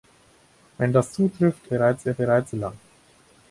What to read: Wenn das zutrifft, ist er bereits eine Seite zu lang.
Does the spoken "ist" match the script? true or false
false